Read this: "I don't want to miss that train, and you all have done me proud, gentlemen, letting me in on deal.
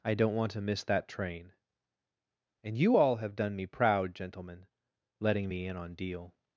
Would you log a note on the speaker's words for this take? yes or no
no